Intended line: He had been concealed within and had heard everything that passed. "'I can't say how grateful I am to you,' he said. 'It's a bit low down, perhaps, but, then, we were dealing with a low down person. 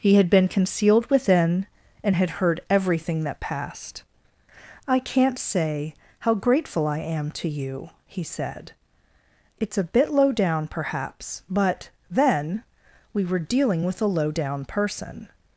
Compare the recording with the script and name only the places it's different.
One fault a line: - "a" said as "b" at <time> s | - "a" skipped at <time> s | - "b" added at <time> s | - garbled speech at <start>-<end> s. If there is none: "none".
none